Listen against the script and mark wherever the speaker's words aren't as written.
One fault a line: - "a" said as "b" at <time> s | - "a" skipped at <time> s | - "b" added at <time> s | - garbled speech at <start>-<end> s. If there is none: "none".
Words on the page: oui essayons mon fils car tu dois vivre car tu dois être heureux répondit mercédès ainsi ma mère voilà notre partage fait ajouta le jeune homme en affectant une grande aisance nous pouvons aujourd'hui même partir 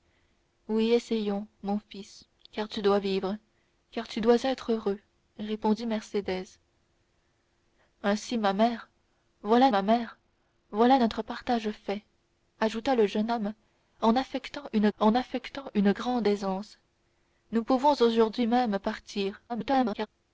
- "ma mère voilà" added at 9.7 s
- "en affectant une" added at 15.0 s
- garbled speech at 19.5-20.1 s